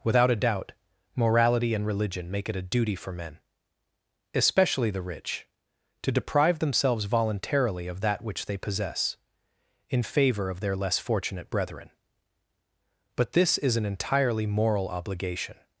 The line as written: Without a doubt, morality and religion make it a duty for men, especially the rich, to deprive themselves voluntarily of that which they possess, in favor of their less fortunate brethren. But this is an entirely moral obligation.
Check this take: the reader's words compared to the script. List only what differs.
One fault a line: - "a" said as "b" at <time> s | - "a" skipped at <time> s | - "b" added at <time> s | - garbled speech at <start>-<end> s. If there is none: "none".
none